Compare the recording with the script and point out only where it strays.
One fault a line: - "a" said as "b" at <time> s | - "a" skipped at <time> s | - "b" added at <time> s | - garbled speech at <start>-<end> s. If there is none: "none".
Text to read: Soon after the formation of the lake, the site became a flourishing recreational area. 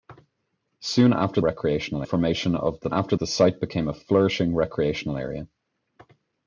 - "the" said as "recreational" at 1.4 s
- "lake" said as "after" at 2.9 s